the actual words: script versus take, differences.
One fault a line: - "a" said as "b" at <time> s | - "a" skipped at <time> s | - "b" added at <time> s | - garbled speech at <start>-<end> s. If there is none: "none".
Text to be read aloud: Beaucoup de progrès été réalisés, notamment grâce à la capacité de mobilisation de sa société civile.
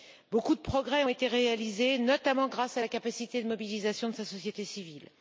none